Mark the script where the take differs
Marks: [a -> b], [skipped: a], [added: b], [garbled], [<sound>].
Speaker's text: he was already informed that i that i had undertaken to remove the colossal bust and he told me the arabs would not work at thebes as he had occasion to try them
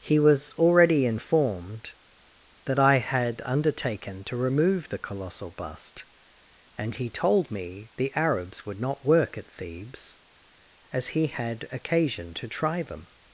he was already informed that i [skipped: that i] had undertaken to remove the colossal bust and he told me the arabs would not work at thebes as he had occasion to try them